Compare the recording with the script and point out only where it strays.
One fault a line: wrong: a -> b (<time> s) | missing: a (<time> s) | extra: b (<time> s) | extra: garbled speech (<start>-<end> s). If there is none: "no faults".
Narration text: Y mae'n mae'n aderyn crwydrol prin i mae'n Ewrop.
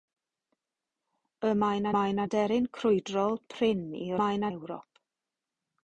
no faults